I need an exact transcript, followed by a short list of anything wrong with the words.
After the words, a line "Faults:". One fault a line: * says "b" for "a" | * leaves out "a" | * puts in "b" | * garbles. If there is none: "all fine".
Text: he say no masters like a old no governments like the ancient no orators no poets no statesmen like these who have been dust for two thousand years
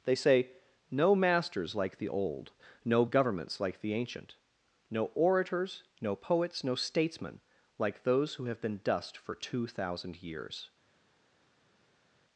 they say no masters like the old no governments like the ancient no orators no poets no statesmen like those who have been dust for two thousand years
Faults:
* says "they" for "he"
* says "the" for "a"
* says "those" for "these"